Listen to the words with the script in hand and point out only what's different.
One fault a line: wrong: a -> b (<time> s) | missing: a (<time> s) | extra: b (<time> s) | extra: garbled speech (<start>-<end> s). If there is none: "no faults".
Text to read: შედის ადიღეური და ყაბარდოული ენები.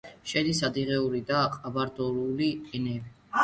no faults